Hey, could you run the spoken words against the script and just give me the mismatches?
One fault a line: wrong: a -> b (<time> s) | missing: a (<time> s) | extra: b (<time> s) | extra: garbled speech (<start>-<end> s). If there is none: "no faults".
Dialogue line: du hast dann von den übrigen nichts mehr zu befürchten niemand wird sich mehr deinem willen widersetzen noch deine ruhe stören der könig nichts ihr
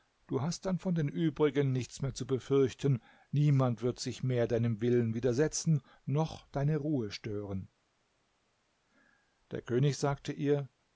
wrong: nichts -> sagte (10.0 s)